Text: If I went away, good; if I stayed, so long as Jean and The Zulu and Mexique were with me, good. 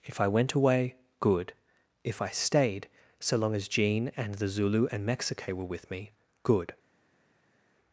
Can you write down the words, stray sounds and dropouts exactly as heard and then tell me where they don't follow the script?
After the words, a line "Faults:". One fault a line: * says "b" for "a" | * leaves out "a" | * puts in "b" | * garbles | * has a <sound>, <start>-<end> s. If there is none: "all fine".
If I went away, good; if I stayed, so long as Jean and The Zulu and Mexique were with me, good.
Faults:
all fine